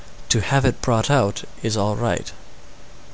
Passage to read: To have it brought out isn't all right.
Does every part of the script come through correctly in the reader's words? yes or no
no